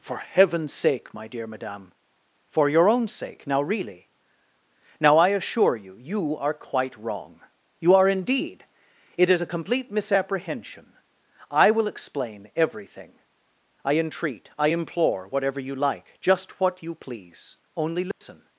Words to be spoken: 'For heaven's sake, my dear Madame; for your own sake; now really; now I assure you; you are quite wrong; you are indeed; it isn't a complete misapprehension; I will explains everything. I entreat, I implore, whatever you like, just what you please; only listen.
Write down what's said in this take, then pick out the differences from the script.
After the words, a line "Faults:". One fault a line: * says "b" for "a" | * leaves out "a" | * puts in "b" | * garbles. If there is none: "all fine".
'For heaven's sake, my dear Madame; for your own sake; now really; now I assure you; you are quite wrong; you are indeed; it is a complete misapprehension; I will explain everything. I entreat, I implore, whatever you like, just what you please; only listen.
Faults:
* says "is" for "isn't"
* says "explain" for "explains"